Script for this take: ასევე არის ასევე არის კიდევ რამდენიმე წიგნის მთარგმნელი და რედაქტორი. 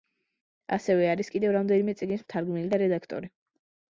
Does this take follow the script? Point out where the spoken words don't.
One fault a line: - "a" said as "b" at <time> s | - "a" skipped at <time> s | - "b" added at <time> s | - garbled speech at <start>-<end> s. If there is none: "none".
- "ასევე არის" skipped at 1.3 s